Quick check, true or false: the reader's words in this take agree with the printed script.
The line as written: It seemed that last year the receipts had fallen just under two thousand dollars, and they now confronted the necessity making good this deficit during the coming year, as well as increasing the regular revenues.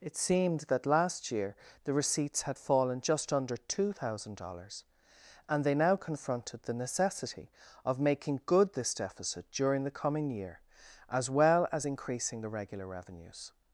false